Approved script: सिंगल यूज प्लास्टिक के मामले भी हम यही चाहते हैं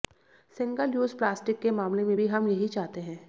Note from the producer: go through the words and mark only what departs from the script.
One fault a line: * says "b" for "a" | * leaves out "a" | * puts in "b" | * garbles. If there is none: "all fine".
* puts in "में"